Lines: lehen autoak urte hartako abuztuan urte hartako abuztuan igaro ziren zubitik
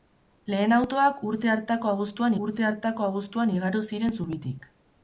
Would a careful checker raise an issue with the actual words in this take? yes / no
no